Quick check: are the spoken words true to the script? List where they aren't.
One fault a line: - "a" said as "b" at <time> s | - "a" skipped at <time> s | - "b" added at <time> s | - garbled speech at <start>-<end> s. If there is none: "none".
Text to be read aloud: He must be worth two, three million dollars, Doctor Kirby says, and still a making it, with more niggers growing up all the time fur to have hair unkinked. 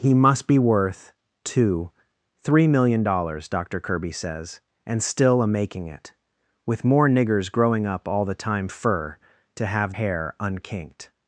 none